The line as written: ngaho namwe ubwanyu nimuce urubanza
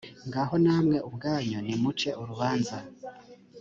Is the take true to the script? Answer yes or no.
yes